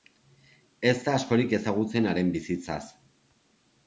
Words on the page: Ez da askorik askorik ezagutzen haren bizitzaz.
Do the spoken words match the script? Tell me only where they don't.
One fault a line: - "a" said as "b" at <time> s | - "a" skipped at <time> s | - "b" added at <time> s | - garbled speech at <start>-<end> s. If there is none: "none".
- "askorik" skipped at 1.5 s